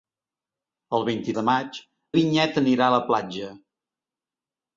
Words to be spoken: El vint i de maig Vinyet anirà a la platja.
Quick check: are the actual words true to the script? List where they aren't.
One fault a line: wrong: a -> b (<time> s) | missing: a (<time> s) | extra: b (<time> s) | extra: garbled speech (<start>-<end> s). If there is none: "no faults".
no faults